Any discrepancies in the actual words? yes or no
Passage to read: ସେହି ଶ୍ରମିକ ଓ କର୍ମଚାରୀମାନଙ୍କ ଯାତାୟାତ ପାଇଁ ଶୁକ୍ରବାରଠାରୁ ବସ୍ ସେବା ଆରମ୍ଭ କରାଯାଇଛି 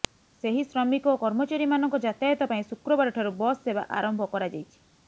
no